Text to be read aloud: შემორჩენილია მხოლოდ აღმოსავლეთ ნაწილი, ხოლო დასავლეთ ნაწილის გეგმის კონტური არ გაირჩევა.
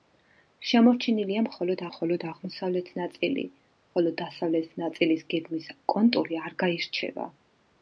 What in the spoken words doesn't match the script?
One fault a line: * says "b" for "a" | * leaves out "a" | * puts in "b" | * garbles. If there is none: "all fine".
* puts in "მხოლოდ"